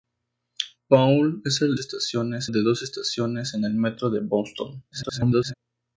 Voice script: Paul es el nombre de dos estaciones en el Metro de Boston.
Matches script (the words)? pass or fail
fail